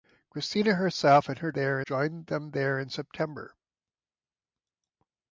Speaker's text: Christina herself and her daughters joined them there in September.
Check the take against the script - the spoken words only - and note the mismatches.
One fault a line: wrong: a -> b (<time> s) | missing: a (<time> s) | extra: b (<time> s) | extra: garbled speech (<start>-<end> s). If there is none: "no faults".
wrong: daughters -> there (1.5 s)